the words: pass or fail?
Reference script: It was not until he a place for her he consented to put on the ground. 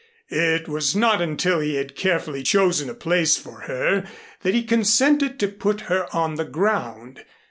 fail